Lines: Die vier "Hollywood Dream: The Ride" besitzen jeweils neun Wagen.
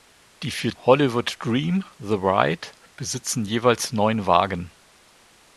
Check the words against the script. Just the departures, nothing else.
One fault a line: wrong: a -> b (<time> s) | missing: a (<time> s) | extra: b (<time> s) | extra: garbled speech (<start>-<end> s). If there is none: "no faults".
no faults